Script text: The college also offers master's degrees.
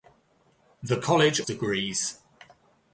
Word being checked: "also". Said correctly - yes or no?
no